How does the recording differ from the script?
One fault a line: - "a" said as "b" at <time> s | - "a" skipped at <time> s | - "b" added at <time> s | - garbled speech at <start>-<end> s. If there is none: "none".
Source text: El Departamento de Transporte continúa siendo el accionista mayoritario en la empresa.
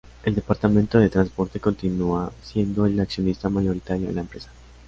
none